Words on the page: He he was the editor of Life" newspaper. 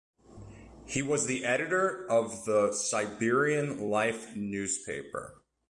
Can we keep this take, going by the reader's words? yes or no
no